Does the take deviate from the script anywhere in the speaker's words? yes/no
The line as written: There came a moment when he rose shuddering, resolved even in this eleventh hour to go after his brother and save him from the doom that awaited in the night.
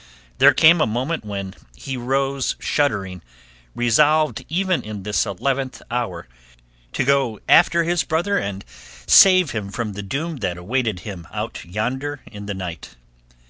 yes